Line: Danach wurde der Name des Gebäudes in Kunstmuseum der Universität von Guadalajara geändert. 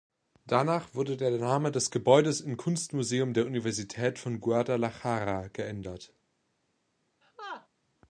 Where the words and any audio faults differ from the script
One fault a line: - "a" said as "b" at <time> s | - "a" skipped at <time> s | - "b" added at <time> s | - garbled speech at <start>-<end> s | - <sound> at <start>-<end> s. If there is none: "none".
- laugh at 7.2-7.7 s